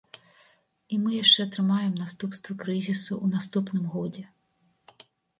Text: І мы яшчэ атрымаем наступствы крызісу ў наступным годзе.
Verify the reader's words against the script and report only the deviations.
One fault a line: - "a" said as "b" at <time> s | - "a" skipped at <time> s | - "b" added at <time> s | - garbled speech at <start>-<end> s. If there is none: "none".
none